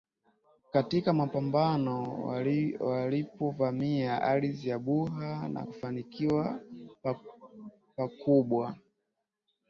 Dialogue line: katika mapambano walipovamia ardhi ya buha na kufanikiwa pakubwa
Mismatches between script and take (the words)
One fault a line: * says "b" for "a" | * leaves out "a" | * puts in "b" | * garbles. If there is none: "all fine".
all fine